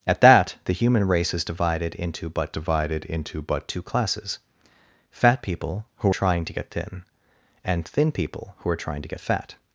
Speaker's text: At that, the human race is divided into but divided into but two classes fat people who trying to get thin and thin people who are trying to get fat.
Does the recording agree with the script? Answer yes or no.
yes